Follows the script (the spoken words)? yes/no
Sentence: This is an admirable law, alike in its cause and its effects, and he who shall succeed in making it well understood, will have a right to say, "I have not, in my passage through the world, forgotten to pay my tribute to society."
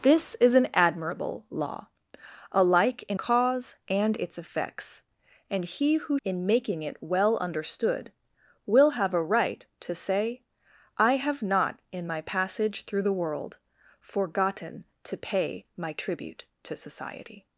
no